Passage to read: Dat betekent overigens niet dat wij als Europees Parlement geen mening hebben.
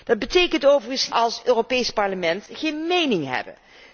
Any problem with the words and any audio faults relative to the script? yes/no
yes